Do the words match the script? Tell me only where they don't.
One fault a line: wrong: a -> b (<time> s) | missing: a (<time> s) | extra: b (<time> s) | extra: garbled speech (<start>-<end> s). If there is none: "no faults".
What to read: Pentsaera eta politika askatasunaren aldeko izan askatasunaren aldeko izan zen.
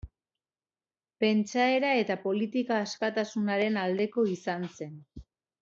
missing: askatasunaren aldeko izan (4.7 s)